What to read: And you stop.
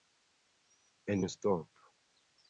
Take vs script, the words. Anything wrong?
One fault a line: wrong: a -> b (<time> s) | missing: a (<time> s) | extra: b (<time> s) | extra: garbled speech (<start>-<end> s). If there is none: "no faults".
no faults